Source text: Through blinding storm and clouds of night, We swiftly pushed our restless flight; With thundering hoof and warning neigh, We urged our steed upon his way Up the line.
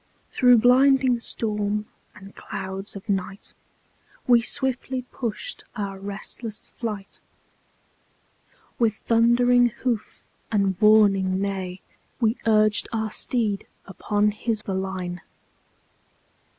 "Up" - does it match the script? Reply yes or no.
no